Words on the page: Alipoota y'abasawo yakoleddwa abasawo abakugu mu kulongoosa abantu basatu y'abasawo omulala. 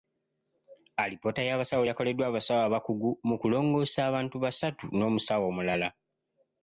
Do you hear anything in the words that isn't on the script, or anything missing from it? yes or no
yes